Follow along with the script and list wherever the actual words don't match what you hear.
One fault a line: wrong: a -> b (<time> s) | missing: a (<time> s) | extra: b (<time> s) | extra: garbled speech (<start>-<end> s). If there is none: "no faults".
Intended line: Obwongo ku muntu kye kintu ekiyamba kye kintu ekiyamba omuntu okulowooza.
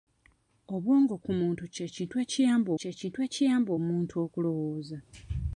no faults